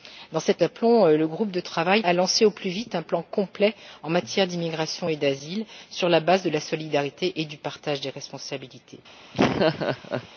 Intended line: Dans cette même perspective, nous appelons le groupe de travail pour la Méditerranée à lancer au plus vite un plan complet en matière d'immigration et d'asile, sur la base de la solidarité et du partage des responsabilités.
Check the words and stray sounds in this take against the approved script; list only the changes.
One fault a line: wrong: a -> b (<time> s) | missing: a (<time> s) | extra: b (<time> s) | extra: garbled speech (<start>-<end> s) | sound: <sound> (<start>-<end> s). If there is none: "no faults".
missing: même perspective nous (0.6 s)
missing: pour la Méditerranée (2.0 s)
sound: laugh (9.3-10.3 s)